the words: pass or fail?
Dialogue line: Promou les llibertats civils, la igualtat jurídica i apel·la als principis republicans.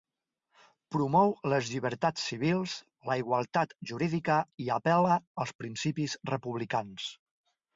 pass